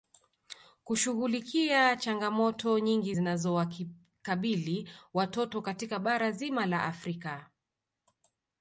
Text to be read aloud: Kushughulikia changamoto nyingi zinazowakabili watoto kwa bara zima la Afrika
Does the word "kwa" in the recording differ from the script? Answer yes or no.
yes